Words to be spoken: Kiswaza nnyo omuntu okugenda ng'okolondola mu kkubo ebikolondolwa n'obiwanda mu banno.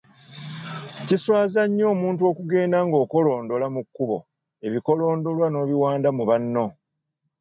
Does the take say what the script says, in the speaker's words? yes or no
yes